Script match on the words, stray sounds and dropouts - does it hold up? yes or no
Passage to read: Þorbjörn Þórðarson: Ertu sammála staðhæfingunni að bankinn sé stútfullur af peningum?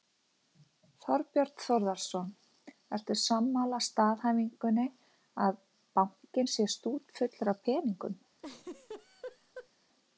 no